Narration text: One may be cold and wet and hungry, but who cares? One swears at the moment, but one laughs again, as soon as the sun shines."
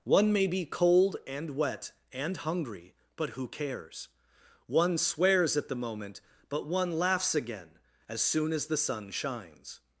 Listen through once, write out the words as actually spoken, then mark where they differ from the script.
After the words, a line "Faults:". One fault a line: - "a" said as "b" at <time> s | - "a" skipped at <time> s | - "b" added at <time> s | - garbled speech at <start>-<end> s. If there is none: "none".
One may be cold and wet and hungry, but who cares? One swears at the moment, but one laughs again, as soon as the sun shines."
Faults:
none